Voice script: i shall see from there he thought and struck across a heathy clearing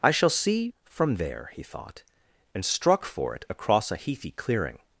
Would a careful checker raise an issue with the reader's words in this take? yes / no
yes